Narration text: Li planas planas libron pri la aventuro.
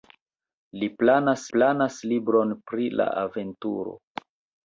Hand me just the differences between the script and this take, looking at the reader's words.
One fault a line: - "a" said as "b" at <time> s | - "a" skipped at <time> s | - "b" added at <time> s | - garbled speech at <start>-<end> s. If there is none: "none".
none